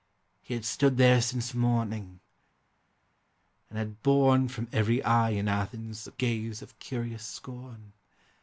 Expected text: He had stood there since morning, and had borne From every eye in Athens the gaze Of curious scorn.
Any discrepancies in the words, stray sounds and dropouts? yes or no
no